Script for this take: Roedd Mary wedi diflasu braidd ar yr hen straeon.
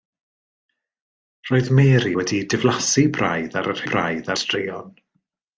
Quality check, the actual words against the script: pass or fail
fail